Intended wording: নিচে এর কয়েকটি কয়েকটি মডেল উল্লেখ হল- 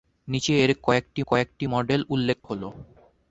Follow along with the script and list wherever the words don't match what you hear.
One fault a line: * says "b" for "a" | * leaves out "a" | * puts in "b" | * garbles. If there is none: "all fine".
all fine